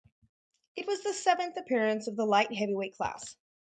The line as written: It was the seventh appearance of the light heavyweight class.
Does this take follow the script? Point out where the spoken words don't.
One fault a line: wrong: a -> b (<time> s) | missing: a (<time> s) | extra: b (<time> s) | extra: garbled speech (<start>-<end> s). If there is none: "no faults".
no faults